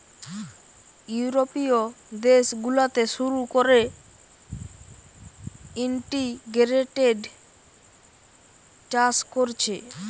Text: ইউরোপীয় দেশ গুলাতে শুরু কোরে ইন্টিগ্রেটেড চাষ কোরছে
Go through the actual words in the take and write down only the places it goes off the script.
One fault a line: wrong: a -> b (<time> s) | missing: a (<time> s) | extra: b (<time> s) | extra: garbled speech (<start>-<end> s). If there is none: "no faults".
no faults